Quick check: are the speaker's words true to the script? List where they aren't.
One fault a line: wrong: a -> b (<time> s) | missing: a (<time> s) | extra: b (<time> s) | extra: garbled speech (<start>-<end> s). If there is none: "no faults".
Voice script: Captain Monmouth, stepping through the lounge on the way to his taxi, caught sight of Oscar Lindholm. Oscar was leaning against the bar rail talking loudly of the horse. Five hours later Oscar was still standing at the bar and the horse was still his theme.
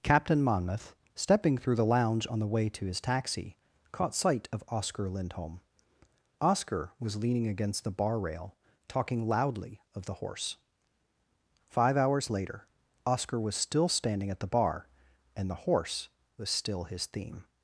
no faults